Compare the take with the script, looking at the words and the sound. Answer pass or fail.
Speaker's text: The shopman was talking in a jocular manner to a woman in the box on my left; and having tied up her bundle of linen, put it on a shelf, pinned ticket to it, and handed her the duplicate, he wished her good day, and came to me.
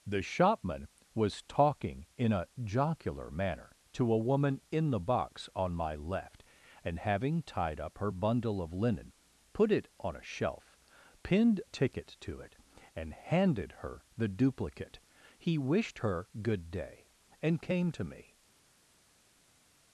pass